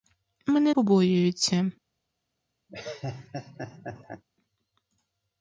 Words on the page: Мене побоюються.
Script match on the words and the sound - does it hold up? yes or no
no